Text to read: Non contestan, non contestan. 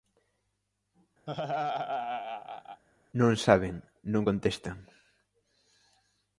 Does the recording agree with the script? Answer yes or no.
no